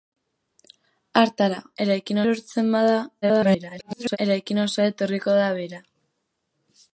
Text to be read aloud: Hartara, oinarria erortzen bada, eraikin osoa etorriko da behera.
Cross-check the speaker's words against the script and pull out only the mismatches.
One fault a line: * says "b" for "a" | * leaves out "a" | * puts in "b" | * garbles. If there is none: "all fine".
* says "eraikin" for "oinarria"
* garbles